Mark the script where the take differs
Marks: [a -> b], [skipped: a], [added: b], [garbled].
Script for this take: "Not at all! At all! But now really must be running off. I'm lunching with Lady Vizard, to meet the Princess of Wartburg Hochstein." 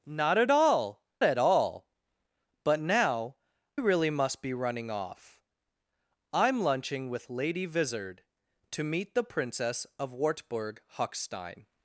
"Not at all! At all! But now really must be running off. I'm lunching with Lady Vizard, to meet the Princess of Wartburg Hochstein."